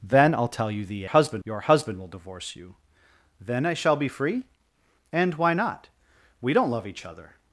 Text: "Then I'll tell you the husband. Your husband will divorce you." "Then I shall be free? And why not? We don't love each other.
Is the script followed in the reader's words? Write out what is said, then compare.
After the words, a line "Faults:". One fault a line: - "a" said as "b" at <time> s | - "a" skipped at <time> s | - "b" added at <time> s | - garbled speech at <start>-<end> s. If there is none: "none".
"Then I'll tell you the husband. Your husband will divorce you." "Then I shall be free? And why not? We don't love each other.
Faults:
none